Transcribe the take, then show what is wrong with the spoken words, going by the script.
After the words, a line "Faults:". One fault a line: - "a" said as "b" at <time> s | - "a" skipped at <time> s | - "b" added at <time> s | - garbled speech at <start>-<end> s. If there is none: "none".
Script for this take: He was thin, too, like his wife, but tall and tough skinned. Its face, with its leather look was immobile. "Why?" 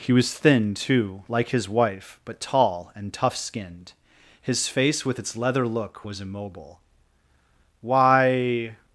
He was thin, too, like his wife, but tall and tough skinned. His face, with its leather look was immobile. "Why?"
Faults:
- "Its" said as "His" at 4.4 s